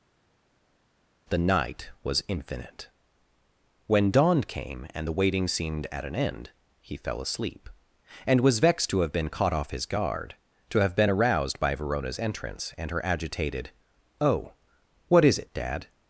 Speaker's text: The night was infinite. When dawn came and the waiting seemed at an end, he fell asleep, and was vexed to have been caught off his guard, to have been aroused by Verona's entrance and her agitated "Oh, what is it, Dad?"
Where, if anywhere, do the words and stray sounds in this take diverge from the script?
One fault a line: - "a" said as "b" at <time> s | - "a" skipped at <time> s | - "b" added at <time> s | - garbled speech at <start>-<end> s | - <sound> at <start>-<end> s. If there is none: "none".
none